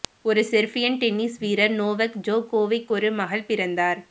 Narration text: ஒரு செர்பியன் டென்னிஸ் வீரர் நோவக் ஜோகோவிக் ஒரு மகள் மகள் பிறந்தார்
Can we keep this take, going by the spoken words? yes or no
no